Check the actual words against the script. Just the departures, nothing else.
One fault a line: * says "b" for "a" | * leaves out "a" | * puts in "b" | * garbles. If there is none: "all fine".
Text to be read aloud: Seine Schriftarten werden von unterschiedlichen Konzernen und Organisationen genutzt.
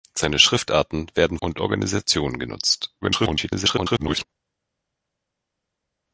* leaves out "von unterschiedlichen Konzernen"
* garbles